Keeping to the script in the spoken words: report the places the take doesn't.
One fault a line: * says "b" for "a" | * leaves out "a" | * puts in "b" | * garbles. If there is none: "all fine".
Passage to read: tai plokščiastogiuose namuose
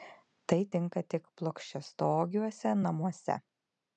* puts in "tinka tik"